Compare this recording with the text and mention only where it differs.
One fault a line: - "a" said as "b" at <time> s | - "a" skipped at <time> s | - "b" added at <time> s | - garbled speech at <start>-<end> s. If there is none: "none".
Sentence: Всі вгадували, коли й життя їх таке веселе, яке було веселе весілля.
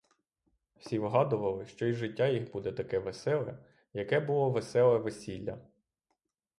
- "коли" said as "що" at 1.6 s
- "буде" added at 2.5 s